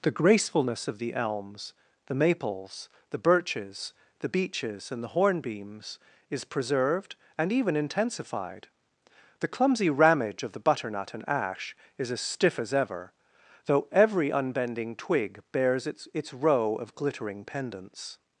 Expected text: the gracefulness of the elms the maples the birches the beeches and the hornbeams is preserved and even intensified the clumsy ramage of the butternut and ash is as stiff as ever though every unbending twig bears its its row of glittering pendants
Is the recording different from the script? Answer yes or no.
no